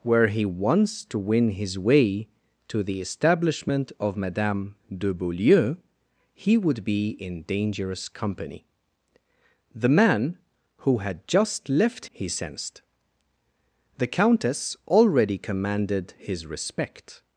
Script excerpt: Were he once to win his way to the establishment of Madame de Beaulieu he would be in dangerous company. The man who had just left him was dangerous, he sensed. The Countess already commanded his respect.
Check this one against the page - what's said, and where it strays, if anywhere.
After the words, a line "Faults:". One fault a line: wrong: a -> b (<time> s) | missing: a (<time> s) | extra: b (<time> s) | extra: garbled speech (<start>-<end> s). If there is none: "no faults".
Were he once to win his way to the establishment of Madame de Beaulieu he would be in dangerous company. The man who had just left he sensed. The Countess already commanded his respect.
Faults:
missing: him was dangerous (12.1 s)